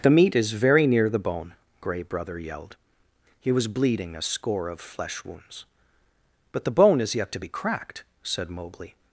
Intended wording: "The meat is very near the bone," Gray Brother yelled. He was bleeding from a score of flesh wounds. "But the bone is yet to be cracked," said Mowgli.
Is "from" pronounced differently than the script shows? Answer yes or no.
yes